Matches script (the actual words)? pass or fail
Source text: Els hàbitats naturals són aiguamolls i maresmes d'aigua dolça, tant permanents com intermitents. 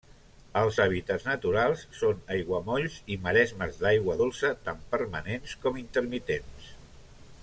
pass